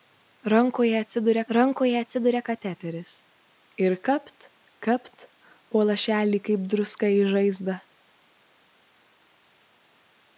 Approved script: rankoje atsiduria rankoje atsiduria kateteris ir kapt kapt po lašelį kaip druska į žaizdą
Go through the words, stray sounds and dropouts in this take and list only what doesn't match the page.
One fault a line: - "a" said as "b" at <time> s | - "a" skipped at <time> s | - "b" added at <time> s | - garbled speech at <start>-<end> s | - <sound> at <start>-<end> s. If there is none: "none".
none